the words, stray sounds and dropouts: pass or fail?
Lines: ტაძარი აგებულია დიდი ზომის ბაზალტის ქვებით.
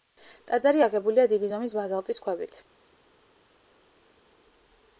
pass